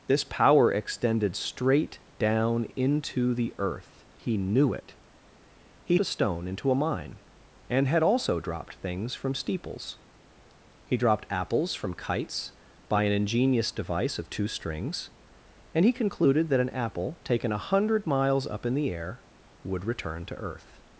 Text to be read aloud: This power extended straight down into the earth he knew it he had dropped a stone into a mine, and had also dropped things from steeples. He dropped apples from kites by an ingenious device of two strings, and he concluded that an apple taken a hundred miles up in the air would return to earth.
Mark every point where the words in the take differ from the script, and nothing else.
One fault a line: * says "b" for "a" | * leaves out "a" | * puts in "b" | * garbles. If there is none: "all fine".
* leaves out "had dropped"